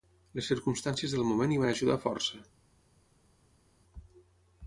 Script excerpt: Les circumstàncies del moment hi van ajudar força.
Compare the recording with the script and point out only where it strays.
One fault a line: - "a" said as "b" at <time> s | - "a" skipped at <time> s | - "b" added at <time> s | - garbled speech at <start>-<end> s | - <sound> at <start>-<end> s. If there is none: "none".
none